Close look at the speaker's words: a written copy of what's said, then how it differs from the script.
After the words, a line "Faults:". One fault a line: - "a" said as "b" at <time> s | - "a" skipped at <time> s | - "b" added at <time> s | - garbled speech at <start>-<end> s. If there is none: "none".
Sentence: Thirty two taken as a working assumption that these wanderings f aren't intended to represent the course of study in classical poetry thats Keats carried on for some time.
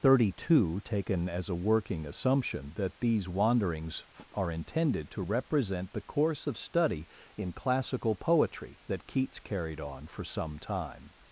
Thirty two taken as a working assumption that these wanderings f are intended to represent the course of study in classical poetry that Keats carried on for some time.
Faults:
- "aren't" said as "are" at 4.3 s
- "thats" said as "that" at 8.9 s